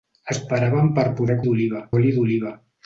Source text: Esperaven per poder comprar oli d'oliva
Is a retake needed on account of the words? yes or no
yes